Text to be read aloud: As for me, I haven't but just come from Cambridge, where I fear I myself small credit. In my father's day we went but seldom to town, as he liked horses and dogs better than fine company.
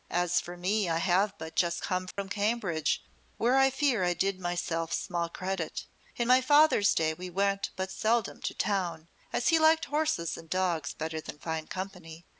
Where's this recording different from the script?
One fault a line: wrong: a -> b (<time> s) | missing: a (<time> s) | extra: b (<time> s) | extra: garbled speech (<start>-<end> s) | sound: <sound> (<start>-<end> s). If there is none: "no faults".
wrong: haven't -> have (1.0 s)
sound: dropout (2.1-2.2 s)
extra: did (4.1 s)